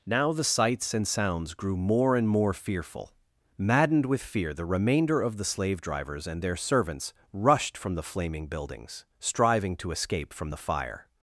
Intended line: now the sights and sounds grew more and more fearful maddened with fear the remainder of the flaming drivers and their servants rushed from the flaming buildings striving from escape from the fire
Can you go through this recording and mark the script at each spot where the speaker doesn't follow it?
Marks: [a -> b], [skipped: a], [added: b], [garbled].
now the sights and sounds grew more and more fearful maddened with fear the remainder of the [flaming -> slave] drivers and their servants rushed from the flaming buildings striving [from -> to] escape from the fire